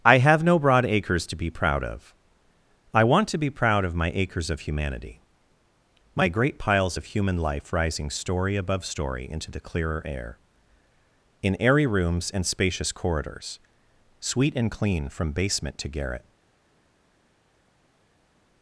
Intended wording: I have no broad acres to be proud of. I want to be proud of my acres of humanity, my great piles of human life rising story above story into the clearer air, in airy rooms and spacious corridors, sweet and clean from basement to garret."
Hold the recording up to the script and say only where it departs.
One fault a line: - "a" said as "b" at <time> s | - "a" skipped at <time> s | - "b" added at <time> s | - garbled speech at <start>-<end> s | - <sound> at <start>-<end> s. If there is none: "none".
none